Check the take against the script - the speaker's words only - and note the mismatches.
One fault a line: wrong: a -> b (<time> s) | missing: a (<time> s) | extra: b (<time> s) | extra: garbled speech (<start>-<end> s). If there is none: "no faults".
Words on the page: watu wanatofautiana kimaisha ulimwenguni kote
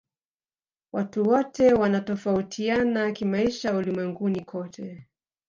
extra: wote (1.2 s)